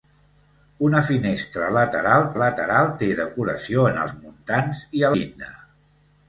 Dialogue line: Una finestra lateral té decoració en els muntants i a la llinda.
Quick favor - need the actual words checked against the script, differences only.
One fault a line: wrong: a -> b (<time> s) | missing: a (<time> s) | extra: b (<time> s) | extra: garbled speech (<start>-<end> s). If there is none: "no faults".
extra: lateral (2.4 s)
missing: la (5.1 s)